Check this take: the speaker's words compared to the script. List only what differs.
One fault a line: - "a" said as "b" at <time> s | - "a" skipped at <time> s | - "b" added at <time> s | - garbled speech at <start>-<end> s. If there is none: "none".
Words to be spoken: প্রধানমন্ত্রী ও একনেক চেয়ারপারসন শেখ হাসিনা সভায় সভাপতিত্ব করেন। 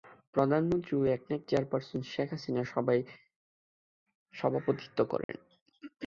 none